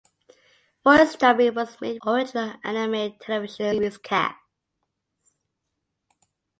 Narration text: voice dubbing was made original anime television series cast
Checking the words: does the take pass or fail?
pass